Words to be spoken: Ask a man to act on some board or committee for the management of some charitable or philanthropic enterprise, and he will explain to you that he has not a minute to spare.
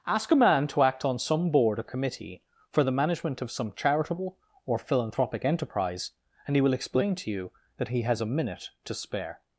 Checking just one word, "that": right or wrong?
right